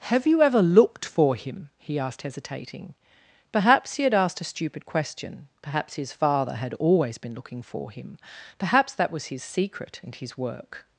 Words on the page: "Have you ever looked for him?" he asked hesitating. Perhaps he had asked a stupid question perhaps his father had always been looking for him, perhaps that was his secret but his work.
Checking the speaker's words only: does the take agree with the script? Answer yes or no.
no